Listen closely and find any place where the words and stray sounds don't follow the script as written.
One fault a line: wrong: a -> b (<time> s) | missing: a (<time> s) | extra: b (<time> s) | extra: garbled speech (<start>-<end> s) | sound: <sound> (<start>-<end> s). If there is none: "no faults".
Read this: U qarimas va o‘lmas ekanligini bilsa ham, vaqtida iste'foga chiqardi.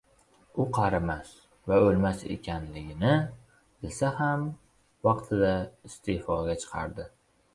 no faults